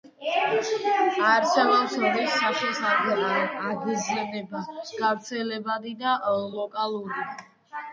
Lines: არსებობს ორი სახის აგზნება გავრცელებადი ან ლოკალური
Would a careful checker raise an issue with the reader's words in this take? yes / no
yes